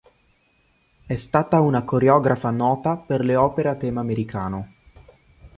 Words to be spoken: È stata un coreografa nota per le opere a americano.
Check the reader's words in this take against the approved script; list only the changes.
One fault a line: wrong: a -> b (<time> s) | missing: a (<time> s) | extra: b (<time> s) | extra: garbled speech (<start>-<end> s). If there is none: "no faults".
wrong: un -> una (1.6 s)
extra: tema (3.8 s)